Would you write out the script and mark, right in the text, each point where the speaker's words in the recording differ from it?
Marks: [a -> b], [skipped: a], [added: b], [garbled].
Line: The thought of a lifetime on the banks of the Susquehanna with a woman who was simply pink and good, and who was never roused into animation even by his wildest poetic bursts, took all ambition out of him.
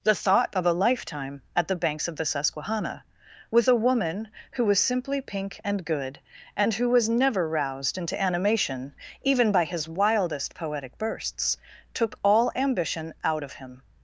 The thought of a lifetime [on -> at] the banks of the Susquehanna with a woman who was simply pink and good, and who was never roused into animation even by his wildest poetic bursts, took all ambition out of him.